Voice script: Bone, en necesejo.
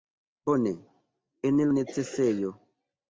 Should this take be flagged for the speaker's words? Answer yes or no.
no